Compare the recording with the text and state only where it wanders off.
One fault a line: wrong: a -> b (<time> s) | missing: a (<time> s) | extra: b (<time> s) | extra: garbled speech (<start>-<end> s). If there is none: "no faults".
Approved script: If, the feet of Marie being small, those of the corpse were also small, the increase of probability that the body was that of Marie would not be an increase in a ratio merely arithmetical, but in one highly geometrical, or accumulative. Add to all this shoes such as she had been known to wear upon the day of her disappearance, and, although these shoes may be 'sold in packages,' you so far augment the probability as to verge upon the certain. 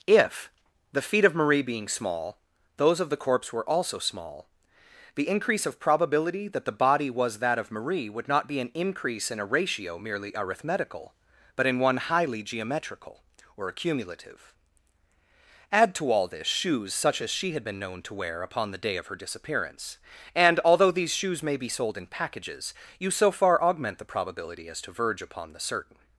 no faults